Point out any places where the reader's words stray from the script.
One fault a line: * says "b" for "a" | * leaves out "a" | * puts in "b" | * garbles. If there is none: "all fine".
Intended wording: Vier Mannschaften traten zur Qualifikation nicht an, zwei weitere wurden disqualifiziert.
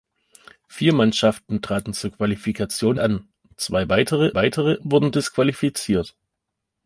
* leaves out "nicht"
* puts in "weitere"